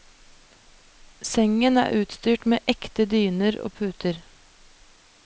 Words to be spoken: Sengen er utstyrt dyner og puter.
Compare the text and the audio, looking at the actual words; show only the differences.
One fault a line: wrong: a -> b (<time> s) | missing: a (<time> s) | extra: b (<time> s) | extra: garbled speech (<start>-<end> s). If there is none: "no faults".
extra: med ekte (2.5 s)